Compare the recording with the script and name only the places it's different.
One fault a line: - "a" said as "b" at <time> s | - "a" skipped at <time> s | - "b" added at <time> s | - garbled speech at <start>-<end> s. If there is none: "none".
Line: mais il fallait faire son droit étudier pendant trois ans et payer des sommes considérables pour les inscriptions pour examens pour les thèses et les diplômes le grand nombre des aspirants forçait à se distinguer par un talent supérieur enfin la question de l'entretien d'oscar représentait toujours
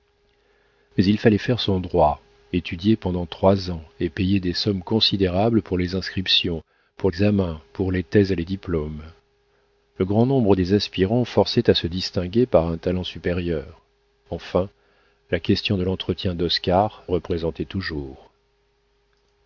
none